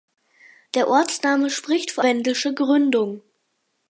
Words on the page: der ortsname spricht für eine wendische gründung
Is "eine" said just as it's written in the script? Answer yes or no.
no